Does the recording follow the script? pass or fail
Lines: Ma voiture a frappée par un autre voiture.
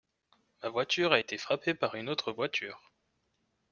fail